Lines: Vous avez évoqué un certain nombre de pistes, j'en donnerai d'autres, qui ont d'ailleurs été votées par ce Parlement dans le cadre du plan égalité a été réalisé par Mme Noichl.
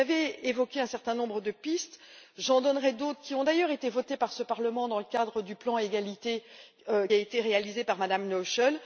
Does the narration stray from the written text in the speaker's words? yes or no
no